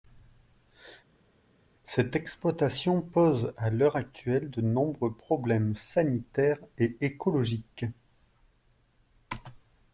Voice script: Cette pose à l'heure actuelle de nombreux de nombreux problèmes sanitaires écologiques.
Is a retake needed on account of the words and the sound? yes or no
yes